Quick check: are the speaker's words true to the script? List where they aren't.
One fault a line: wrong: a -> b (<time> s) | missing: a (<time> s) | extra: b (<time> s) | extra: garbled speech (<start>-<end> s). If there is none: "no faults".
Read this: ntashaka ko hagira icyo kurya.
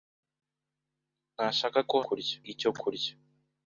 wrong: hagira -> kurya (2.0 s)